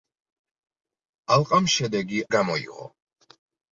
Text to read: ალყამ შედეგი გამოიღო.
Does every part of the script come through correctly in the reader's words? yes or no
yes